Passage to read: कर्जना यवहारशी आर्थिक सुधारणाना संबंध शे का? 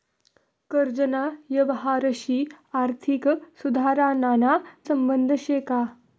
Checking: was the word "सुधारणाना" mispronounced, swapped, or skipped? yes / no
no